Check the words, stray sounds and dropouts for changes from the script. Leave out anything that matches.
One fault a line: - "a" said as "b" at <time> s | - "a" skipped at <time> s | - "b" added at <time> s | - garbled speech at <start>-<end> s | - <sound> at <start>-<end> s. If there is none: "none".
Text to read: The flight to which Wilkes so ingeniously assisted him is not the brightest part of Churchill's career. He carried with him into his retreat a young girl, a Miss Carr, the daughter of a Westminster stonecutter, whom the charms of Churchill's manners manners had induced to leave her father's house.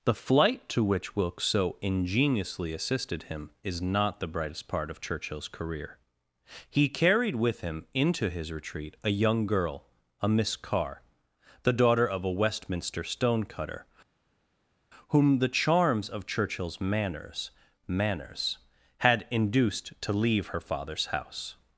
none